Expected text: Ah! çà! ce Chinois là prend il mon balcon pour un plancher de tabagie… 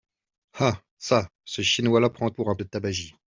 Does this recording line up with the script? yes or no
no